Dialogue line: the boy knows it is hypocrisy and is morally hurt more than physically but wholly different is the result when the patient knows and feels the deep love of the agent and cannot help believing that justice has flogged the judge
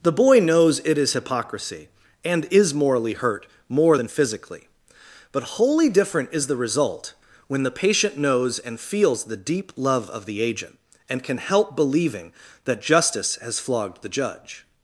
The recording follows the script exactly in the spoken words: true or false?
false